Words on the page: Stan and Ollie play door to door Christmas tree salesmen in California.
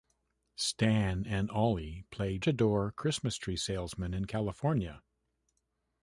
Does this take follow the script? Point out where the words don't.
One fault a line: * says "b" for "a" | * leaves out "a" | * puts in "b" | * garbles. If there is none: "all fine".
* leaves out "door"